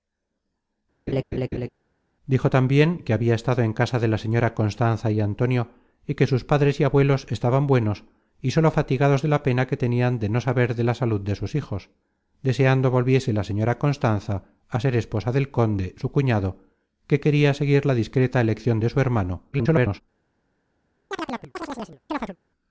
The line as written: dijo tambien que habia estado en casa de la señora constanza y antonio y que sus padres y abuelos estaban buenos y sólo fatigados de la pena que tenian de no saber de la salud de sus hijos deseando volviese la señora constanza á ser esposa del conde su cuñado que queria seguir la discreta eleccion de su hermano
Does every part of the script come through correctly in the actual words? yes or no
no